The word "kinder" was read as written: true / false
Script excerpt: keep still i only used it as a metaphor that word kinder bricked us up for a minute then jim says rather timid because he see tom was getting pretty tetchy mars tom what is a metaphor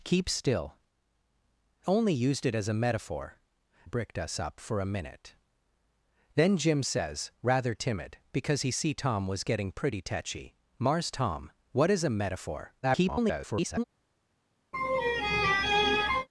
false